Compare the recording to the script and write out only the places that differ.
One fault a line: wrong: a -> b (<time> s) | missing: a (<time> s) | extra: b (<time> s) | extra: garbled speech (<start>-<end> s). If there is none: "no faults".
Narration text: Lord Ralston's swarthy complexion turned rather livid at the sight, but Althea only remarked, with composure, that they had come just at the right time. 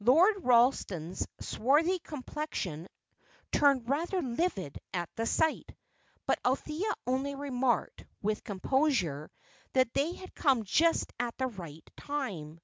no faults